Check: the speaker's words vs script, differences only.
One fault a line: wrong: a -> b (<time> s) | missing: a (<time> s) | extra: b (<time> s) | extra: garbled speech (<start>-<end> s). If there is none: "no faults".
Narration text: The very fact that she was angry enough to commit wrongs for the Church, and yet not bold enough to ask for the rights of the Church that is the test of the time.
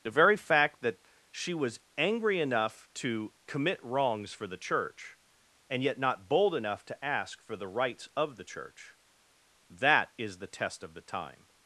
no faults